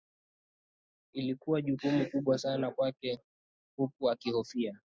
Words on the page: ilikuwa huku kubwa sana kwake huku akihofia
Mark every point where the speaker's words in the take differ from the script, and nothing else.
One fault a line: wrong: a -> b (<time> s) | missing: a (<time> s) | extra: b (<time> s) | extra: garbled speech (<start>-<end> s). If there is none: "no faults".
wrong: huku -> jukumu (1.6 s)